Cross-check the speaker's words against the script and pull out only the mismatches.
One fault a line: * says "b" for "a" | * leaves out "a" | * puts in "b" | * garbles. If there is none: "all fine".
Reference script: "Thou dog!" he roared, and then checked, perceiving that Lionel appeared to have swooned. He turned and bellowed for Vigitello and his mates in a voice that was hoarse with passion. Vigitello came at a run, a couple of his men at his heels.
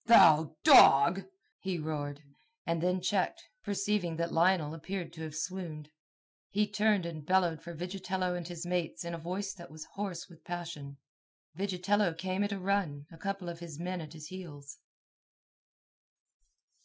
all fine